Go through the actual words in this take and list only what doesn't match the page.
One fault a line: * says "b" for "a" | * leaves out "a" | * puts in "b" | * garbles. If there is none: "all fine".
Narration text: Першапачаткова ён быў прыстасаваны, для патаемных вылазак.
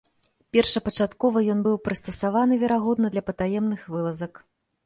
* puts in "верагодна"